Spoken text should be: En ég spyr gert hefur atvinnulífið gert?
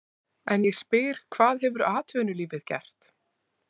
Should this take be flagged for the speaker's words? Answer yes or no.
yes